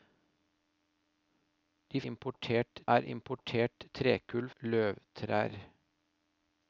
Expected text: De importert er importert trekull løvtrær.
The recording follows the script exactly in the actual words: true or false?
true